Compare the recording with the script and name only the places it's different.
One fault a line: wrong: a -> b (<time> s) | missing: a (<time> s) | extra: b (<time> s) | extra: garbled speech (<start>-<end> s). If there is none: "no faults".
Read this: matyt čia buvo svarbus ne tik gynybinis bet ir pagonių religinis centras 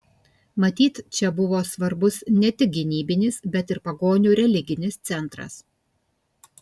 no faults